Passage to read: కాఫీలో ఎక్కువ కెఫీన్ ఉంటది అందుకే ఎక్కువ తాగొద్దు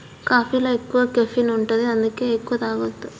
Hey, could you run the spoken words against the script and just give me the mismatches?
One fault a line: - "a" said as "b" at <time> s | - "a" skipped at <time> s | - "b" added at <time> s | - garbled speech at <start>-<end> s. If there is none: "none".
none